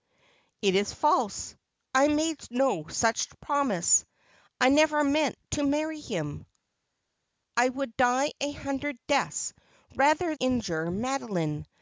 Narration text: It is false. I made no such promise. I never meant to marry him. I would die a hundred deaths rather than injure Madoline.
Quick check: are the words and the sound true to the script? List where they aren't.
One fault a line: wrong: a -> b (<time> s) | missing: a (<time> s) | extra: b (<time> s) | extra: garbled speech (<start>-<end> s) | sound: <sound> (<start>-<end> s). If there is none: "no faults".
missing: than (10.4 s)